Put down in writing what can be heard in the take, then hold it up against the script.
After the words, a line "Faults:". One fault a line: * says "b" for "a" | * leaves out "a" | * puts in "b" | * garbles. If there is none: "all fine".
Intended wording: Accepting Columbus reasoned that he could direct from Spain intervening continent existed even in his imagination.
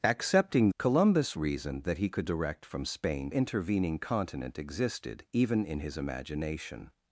Accepting Columbus reasoned that he could direct from Spain intervening continent existed even in his imagination.
Faults:
all fine